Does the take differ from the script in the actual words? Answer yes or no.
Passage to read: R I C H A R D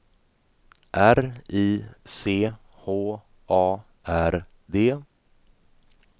no